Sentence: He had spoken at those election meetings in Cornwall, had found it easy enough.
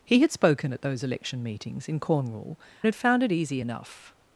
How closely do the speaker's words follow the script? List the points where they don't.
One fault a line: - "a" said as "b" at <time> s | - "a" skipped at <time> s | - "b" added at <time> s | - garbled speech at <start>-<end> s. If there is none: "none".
none